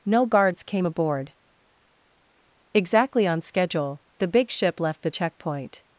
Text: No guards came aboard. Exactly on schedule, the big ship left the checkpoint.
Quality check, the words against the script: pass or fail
pass